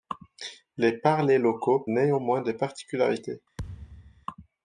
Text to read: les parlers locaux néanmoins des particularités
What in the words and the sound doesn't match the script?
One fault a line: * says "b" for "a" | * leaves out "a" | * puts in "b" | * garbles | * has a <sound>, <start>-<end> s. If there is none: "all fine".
* has a thud, 3.6-4.3 s